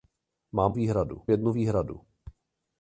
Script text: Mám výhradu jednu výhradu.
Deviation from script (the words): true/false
false